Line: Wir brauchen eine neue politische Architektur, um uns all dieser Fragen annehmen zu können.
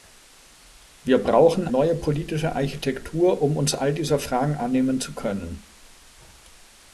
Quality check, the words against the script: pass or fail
fail